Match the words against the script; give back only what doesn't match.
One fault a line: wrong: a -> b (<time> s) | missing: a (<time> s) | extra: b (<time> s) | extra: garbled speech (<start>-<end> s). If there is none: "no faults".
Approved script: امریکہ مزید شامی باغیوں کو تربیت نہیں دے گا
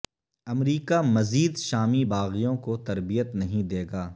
no faults